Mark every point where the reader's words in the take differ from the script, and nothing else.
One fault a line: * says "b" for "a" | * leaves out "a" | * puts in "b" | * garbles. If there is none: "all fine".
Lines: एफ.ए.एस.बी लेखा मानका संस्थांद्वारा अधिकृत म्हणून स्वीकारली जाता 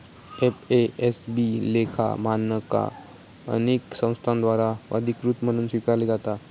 * puts in "अनेक"